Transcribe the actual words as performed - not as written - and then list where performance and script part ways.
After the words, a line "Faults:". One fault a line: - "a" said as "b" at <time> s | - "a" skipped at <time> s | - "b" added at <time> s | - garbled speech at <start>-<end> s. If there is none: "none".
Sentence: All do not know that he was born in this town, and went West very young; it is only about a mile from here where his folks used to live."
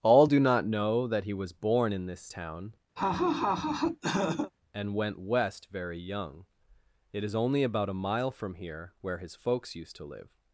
All do not know that he was born in this town, and went West very young; it is only about a mile from here where his folks used to live."
Faults:
none